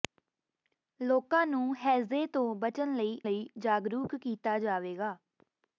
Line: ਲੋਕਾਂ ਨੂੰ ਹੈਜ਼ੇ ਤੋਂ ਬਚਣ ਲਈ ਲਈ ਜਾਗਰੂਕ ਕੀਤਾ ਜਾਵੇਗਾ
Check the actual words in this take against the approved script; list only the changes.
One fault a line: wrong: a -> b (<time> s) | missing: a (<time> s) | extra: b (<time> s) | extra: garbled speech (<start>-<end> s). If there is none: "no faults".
no faults